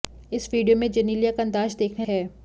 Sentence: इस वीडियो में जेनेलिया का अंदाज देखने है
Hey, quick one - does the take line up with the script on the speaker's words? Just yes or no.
yes